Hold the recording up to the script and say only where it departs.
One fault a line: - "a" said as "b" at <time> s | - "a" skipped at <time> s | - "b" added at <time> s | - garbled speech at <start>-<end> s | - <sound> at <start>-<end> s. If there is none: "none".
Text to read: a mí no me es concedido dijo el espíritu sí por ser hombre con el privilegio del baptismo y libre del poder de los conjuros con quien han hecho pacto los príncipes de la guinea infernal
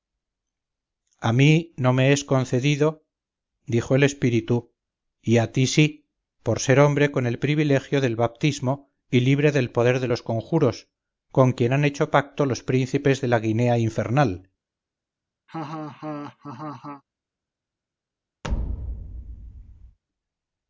- "y a ti" added at 5.2 s
- laugh at 15.5-17.0 s
- thud at 18.4-20.0 s